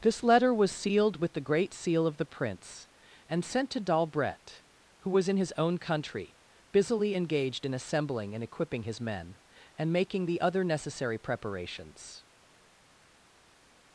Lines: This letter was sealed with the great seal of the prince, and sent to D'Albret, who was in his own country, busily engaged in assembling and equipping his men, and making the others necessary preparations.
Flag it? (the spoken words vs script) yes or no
yes